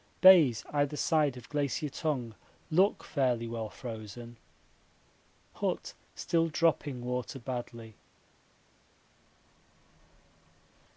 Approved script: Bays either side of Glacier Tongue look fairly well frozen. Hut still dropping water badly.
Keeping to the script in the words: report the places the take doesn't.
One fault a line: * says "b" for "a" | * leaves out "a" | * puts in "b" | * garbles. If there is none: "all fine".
all fine